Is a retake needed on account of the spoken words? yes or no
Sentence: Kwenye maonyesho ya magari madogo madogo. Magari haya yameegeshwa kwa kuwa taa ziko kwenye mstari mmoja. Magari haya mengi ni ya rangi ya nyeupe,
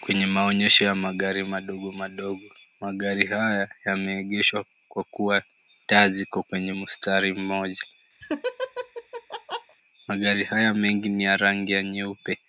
no